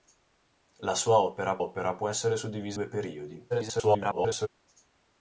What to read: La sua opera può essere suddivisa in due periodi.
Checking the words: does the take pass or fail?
fail